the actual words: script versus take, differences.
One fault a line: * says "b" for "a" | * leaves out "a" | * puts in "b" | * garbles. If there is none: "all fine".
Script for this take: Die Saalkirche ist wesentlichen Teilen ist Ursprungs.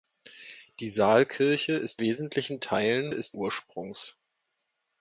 all fine